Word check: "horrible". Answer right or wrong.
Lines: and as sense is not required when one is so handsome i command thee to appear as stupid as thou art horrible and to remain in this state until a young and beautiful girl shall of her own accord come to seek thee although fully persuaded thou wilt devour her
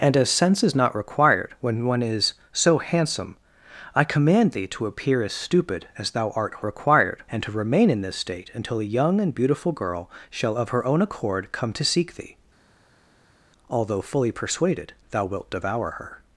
wrong